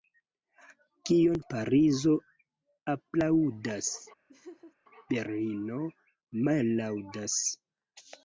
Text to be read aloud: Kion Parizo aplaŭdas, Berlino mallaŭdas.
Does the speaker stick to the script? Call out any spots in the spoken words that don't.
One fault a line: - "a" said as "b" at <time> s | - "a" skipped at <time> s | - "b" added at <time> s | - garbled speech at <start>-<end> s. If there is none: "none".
none